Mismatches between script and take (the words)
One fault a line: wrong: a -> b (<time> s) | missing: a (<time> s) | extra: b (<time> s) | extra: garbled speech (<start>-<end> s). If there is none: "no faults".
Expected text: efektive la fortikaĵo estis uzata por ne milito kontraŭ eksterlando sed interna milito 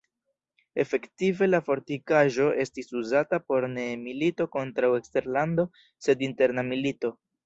no faults